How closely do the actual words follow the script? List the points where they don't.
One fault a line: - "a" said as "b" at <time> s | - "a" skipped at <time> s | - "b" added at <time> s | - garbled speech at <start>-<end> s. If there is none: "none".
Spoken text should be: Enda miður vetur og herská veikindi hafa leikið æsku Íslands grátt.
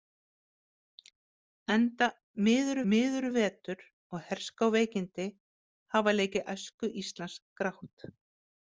- "miður" added at 2.9 s